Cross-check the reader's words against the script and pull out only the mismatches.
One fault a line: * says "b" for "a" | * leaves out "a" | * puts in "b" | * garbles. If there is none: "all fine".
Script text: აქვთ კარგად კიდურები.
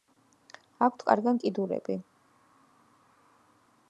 all fine